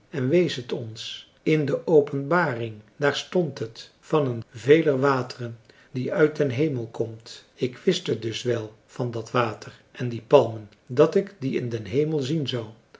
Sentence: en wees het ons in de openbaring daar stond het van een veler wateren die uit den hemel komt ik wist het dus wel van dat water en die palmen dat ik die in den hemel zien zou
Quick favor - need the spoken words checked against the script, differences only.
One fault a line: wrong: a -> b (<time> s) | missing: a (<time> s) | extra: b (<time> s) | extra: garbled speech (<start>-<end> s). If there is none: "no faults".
no faults